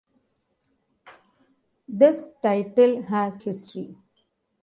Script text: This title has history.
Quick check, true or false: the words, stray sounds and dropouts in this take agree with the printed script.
true